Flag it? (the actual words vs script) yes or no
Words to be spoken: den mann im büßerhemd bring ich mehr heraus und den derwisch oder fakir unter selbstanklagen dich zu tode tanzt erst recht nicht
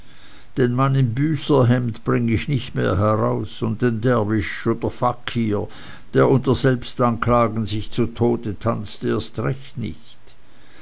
yes